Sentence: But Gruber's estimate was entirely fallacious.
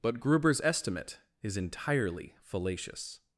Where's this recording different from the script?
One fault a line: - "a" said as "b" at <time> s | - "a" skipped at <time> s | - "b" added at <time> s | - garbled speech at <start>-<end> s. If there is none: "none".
- "was" said as "is" at 1.4 s